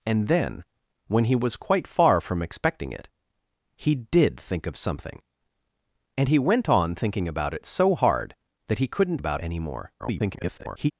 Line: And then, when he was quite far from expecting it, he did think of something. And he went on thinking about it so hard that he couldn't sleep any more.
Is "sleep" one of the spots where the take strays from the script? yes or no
yes